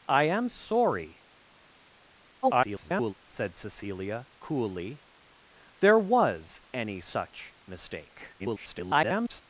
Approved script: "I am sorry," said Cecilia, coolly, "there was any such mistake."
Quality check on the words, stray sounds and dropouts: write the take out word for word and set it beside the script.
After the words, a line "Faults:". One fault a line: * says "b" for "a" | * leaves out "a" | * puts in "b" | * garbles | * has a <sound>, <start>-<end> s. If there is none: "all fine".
"I am sorry," [garbled] said Cecilia, coolly, "there was any such mistake." [garbled]
Faults:
* garbles
* garbles